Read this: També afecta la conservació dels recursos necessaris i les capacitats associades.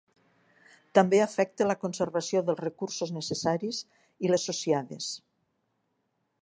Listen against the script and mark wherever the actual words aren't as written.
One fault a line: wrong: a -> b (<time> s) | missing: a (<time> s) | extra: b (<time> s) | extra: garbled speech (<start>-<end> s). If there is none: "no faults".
missing: les capacitats (4.3 s)